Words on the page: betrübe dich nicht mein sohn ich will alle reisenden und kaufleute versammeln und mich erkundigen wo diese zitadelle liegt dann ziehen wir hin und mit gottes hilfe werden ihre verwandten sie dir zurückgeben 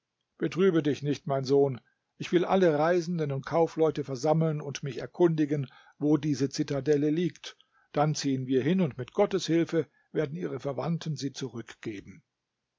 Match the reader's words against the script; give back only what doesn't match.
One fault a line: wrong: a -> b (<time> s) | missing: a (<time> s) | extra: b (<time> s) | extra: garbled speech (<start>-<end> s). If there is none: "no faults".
missing: dir (11.3 s)